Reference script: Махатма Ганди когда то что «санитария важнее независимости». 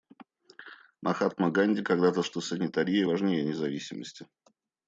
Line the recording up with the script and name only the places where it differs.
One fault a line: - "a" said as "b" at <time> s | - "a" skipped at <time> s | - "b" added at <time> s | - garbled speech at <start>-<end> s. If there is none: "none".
none